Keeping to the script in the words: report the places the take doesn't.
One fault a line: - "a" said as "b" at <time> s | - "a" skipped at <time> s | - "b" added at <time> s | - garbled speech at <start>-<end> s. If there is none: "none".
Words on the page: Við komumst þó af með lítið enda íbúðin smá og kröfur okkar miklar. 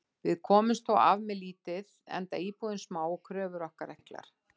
none